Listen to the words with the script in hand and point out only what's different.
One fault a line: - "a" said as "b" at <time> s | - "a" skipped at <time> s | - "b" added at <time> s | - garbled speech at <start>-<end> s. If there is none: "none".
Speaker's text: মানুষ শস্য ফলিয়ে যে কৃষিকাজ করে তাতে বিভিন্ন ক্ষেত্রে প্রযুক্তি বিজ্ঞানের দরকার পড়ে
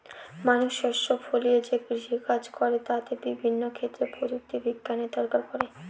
none